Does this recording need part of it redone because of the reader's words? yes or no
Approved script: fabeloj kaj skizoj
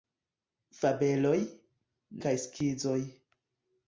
no